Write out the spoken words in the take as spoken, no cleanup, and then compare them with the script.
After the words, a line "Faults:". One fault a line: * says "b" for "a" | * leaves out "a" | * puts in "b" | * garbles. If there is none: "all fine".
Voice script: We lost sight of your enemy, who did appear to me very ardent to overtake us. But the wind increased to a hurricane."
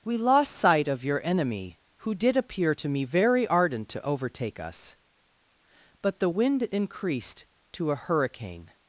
We lost sight of your enemy, who did appear to me very ardent to overtake us. But the wind increased to a hurricane."
Faults:
all fine